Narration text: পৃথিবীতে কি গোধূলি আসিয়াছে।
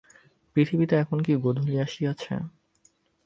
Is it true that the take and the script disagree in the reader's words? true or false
true